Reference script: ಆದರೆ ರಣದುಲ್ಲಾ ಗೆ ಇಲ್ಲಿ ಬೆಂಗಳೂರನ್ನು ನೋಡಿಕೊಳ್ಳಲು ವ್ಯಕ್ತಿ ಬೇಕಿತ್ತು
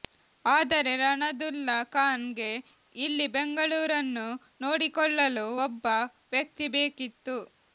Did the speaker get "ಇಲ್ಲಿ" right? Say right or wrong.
right